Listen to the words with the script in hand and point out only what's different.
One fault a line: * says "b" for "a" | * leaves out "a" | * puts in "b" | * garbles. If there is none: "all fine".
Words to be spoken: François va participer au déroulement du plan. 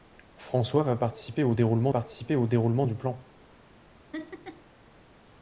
* puts in "participer au déroulement"